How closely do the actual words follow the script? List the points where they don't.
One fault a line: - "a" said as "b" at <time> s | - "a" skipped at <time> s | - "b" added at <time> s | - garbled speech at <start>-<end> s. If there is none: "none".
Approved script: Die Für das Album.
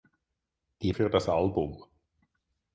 none